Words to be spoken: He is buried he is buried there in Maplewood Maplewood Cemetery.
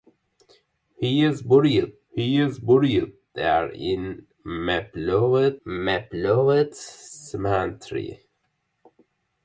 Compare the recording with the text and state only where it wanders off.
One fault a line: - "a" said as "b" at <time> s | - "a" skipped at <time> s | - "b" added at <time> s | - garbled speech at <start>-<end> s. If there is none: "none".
none